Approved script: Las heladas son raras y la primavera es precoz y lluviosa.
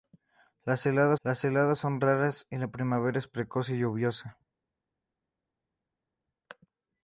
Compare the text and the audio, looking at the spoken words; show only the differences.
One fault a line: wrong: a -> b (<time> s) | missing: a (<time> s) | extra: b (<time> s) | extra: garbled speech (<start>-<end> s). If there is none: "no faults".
extra: las heladas (1.2 s)